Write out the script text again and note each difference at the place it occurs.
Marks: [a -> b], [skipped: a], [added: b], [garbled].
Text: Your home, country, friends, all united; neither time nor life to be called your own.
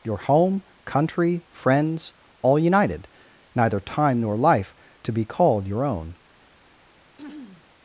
Your home, country, friends, all united; neither time nor life to be called your own.